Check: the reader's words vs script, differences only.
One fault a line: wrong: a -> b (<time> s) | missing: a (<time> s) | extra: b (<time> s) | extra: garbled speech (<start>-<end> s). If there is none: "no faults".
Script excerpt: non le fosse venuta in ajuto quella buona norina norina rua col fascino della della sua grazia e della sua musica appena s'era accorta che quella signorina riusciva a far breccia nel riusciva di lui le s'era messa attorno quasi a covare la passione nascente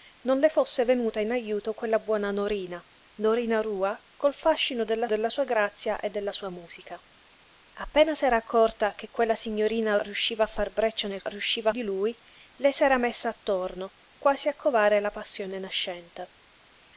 no faults